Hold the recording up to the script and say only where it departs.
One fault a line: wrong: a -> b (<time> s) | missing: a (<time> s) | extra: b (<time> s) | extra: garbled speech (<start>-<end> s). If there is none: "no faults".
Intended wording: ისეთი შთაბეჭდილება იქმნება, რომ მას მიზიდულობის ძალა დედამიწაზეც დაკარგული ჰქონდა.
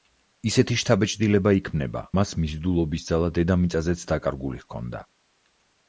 missing: რომ (2.0 s)